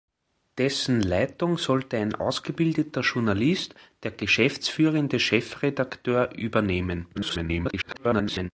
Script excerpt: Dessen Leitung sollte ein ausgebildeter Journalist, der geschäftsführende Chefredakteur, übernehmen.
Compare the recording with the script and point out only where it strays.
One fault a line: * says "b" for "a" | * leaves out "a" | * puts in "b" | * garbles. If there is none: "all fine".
* garbles